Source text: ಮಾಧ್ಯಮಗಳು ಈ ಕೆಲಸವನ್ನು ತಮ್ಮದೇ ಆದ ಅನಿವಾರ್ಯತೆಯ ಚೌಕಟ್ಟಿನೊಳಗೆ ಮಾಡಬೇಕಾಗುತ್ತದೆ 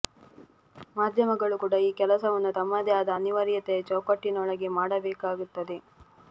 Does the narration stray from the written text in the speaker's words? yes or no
yes